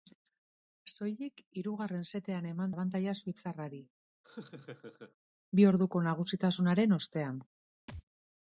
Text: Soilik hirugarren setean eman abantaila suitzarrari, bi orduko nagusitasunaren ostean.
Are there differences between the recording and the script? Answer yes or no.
no